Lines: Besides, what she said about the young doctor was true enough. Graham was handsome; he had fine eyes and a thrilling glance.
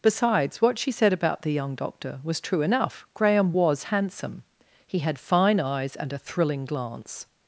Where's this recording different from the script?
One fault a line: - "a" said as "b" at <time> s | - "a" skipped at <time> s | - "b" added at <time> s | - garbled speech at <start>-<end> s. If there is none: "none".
none